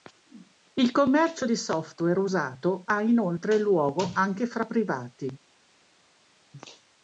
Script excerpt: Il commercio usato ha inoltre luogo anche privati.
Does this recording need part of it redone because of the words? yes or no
yes